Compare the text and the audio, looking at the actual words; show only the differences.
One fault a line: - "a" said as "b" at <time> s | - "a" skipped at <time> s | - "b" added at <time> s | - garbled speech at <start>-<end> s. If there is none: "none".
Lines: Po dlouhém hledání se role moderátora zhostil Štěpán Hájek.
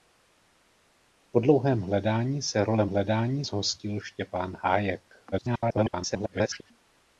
- "moderátora" said as "hledání" at 2.8 s
- garbled speech at 5.3-6.7 s